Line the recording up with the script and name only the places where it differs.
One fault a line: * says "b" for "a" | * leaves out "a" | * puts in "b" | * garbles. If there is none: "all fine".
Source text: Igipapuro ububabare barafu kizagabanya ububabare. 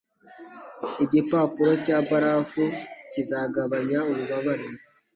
* says "cya" for "ububabare"